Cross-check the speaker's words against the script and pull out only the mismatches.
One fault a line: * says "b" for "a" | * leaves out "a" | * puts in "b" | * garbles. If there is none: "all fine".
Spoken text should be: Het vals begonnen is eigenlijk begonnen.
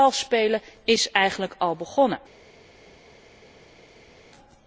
* says "spelen" for "begonnen"
* puts in "al"